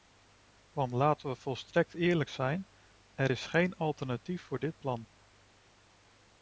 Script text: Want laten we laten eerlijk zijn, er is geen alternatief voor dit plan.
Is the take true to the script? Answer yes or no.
no